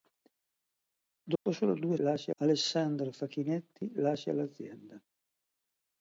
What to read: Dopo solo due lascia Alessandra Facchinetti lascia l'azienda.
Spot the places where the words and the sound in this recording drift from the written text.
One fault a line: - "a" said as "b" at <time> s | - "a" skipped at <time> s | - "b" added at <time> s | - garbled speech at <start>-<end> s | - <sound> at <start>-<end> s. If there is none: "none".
- dropout at 1.4-1.5 s